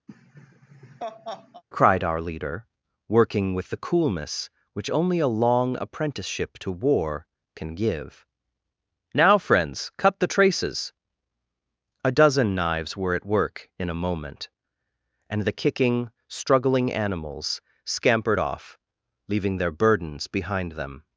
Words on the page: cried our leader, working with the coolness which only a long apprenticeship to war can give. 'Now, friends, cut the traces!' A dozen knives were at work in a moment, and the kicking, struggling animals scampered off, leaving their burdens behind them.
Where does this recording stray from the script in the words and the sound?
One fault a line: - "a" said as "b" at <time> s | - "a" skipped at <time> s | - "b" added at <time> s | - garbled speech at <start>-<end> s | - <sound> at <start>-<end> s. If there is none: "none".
- laugh at 0.1-1.6 s